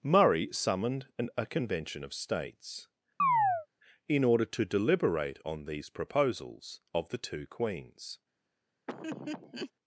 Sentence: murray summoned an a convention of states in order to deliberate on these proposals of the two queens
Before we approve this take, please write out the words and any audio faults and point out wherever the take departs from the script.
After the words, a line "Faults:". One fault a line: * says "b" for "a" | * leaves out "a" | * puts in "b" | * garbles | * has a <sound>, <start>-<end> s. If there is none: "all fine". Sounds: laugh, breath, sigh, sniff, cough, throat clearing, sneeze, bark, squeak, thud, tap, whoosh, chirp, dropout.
murray summoned an a convention of states in order to deliberate on these proposals of the two queens
Faults:
* has a chirp, 3.2-3.7 s
* has a laugh, 8.9-9.7 s